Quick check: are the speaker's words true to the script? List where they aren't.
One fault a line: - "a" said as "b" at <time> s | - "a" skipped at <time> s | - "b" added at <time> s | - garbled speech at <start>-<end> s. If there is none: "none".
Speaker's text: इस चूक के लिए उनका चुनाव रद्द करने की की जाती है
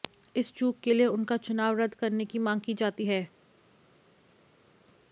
- "मांग" added at 2.4 s